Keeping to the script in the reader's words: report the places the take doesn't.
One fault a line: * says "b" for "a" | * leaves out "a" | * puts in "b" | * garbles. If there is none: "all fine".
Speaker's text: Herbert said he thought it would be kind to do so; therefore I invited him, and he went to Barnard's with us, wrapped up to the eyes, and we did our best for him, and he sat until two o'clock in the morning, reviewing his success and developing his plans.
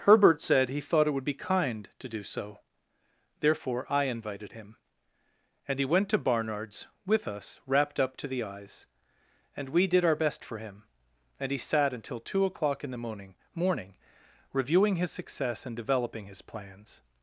* puts in "morning"